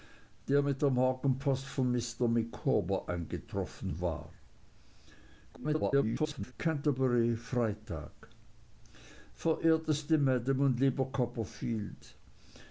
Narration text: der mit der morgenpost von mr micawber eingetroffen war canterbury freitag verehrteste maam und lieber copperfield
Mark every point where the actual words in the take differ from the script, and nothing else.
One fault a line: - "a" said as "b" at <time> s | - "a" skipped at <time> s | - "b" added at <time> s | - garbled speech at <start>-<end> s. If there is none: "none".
- garbled speech at 5.5-6.5 s